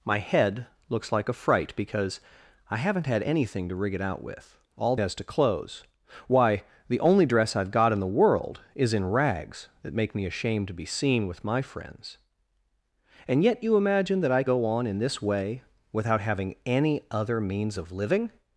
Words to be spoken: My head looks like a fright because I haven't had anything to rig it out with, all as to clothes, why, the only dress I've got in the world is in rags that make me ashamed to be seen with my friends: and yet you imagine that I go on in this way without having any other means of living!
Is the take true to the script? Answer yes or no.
yes